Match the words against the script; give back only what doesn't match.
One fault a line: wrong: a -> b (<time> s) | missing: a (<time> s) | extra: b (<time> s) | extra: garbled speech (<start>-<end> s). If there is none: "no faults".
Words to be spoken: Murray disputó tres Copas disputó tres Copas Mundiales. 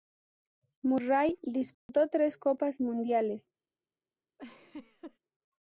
missing: disputó tres Copas (2.8 s)